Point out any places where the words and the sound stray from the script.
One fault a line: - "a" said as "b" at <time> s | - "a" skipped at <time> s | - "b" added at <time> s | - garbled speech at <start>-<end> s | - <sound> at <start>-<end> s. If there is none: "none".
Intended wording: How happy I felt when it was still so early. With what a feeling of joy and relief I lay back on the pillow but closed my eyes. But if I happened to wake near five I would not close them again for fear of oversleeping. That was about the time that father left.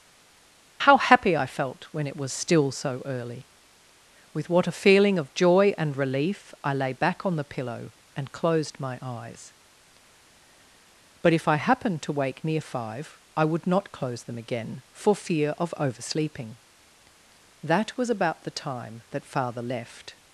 - "but" said as "and" at 8.2 s